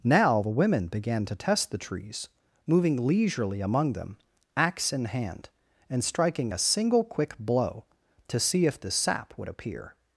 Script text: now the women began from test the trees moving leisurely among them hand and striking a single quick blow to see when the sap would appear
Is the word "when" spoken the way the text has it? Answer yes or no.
no